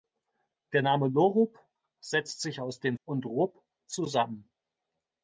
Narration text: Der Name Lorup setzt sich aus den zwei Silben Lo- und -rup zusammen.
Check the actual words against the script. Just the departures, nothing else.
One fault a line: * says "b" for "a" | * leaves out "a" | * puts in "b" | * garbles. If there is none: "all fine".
* leaves out "zwei Silben Lo"